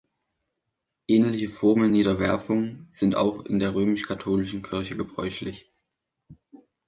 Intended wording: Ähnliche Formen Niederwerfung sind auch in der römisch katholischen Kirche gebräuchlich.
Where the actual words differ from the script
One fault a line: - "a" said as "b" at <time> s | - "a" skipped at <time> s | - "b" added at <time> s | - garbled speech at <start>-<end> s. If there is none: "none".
none